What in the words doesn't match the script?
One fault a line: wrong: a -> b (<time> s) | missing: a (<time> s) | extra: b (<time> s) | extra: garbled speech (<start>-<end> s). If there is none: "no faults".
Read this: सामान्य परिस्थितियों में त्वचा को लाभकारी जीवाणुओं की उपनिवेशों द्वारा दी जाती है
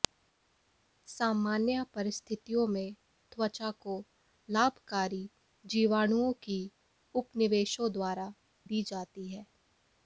no faults